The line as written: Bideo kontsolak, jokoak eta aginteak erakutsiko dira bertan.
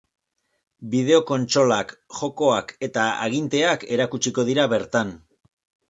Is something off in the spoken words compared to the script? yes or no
no